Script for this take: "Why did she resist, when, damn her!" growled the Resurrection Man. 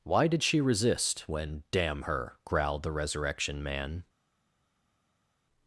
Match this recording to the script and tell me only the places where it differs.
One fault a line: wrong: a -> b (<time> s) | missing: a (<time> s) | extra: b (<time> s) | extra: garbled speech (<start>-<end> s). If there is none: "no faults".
no faults